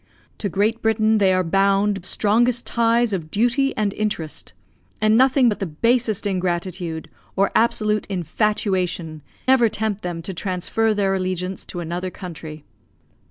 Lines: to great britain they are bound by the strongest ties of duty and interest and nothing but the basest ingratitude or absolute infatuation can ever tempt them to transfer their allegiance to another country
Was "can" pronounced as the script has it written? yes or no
no